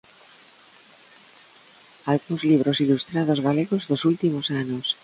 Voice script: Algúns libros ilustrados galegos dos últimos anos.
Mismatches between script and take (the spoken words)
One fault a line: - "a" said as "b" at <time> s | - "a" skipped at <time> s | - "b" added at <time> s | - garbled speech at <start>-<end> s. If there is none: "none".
none